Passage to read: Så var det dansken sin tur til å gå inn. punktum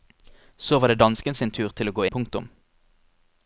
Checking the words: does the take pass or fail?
fail